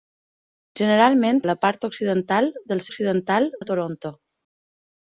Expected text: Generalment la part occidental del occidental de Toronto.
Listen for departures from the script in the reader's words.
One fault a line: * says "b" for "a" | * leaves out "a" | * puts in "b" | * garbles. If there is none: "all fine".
all fine